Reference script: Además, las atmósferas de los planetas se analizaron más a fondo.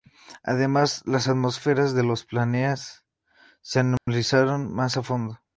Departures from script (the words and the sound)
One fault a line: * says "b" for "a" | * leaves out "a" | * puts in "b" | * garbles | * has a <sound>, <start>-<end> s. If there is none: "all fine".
* has a dropout, 4.0-4.1 s